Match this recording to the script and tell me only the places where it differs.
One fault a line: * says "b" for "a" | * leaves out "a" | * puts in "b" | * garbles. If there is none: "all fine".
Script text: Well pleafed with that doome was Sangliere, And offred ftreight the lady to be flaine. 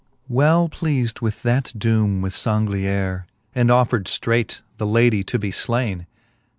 all fine